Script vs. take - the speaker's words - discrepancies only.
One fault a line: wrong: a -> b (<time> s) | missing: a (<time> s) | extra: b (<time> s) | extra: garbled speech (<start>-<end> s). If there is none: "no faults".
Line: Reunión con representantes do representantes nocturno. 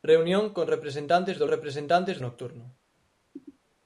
no faults